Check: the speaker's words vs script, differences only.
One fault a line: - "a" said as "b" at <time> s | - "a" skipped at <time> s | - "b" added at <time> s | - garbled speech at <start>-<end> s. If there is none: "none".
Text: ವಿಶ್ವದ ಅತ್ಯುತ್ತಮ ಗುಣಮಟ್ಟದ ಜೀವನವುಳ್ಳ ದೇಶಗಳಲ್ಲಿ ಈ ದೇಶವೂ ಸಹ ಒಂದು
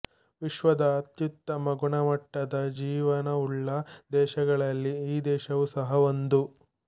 none